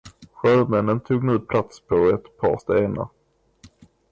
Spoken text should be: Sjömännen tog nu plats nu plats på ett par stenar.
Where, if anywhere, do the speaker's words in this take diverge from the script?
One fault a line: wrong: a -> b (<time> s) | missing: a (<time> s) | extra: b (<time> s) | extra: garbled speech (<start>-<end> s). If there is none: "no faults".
missing: nu plats (1.8 s)